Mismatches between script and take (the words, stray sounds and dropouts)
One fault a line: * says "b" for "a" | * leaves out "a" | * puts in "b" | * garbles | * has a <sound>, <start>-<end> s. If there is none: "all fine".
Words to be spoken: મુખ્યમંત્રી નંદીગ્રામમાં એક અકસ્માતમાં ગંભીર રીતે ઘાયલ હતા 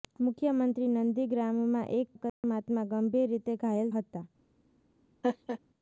* has a dropout, 2.3-2.4 s
* has a laugh, 5.2-5.6 s